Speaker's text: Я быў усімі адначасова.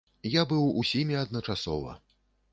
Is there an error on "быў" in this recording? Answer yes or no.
no